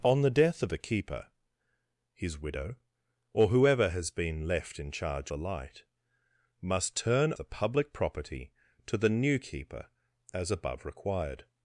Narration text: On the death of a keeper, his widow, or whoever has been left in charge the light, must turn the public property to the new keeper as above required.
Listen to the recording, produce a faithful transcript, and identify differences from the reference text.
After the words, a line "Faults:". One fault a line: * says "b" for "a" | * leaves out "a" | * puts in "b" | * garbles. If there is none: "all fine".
On the death of a keeper, his widow, or whoever has been left in charge the light, must turn the public property to the new keeper as above required.
Faults:
all fine